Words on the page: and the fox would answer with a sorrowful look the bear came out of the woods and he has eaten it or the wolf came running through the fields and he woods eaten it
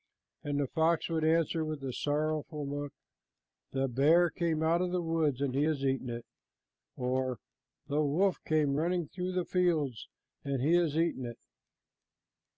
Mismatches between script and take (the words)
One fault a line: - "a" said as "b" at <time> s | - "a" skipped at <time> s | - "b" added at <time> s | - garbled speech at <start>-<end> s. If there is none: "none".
- "woods" said as "has" at 10.7 s